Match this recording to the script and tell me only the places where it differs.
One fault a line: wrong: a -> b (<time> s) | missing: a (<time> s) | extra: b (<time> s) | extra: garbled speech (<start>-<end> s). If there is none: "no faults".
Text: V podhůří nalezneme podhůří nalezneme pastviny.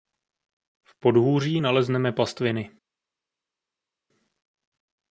missing: podhůří nalezneme (2.1 s)